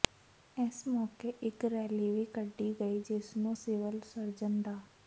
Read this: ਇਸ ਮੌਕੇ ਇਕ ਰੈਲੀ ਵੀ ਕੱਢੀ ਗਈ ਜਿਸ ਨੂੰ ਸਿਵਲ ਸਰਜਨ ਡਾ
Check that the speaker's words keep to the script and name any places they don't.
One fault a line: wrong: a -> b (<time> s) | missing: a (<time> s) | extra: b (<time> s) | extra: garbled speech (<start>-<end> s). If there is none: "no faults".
no faults